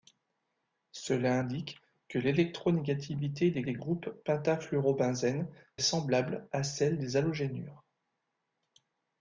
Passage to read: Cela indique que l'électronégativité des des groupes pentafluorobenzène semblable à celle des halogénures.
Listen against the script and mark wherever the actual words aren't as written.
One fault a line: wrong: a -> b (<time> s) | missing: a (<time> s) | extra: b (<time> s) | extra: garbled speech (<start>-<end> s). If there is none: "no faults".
no faults